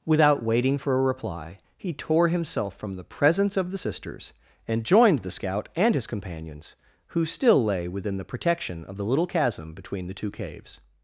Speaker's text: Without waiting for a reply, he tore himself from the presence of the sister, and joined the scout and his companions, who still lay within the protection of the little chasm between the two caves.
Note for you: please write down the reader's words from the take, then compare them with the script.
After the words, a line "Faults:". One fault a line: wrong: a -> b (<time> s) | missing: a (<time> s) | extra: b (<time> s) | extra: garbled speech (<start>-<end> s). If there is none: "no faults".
Without waiting for a reply, he tore himself from the presence of the sisters, and joined the scout and his companions, who still lay within the protection of the little chasm between the two caves.
Faults:
wrong: sister -> sisters (3.8 s)